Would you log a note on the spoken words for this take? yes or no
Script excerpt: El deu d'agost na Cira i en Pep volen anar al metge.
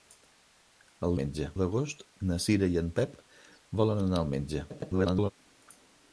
yes